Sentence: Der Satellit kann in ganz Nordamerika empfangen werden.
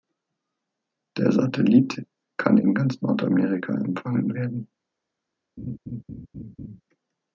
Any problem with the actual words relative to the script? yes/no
no